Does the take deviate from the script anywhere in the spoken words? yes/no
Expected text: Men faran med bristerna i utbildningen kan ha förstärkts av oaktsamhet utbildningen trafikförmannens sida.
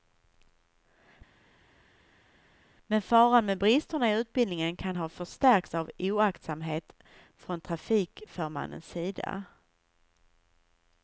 yes